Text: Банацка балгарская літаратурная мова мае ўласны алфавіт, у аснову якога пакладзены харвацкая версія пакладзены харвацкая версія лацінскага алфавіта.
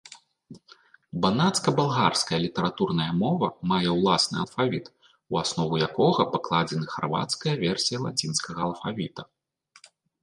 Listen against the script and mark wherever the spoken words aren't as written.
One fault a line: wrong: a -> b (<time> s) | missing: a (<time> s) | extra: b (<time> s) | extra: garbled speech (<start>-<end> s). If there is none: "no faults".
missing: пакладзены харвацкая версія (8.0 s)